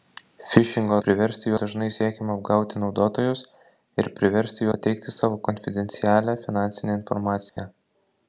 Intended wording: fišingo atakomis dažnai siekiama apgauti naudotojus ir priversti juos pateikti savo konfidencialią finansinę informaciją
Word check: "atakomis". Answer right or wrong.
wrong